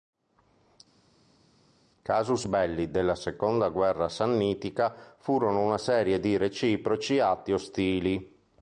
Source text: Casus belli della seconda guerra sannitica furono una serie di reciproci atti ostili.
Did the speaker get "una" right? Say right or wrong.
right